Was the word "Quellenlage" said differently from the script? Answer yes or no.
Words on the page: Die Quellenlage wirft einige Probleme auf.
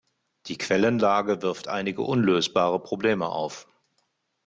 no